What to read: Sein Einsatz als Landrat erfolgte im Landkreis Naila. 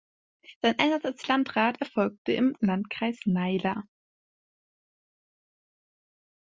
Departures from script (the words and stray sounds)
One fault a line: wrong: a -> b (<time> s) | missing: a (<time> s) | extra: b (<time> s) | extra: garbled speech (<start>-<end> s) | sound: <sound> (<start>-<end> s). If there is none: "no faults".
no faults